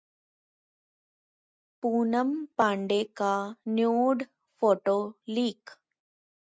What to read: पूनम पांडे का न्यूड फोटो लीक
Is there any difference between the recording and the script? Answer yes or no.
no